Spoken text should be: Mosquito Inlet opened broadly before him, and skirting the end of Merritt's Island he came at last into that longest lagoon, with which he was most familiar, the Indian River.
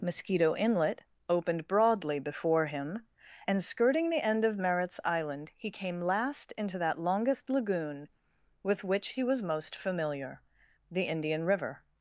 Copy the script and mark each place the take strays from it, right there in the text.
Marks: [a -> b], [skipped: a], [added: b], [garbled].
Mosquito Inlet opened broadly before him, and skirting the end of Merritt's Island he came [skipped: at] last into that longest lagoon, with which he was most familiar, the Indian River.